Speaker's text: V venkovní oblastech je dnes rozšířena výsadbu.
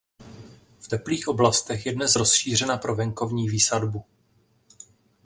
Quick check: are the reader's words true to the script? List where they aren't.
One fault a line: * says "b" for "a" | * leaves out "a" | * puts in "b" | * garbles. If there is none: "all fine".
* says "teplých" for "venkovní"
* puts in "pro venkovní"